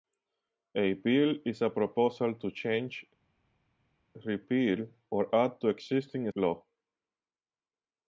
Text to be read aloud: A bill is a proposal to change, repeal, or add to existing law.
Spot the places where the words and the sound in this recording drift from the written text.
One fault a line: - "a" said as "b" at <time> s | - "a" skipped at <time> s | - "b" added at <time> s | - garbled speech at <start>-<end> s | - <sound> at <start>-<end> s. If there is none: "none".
none